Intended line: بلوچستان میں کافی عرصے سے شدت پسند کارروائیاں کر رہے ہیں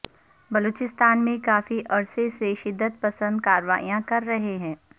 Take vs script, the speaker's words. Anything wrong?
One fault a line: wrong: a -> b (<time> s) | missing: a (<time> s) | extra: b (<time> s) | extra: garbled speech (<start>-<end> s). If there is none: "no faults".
no faults